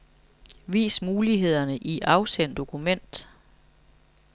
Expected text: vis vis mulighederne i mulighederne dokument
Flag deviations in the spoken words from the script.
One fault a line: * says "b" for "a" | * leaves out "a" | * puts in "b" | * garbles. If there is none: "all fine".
* leaves out "vis"
* says "afsend" for "mulighederne"